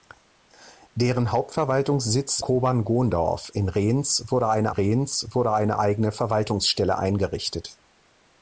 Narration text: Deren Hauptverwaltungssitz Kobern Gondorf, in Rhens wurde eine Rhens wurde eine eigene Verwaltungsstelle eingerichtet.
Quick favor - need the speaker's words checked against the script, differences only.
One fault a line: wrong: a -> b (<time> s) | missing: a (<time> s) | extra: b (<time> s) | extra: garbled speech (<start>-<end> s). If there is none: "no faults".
no faults